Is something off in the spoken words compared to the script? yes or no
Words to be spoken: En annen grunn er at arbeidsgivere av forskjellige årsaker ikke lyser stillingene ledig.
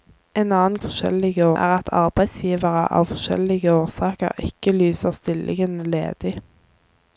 yes